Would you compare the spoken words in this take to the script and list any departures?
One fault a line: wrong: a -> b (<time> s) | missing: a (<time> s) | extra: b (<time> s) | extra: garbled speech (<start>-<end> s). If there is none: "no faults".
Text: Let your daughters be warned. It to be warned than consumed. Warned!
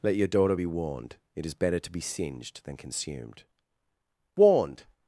wrong: daughters -> daughter (0.3 s)
extra: is better (1.4 s)
wrong: warned -> singed (2.0 s)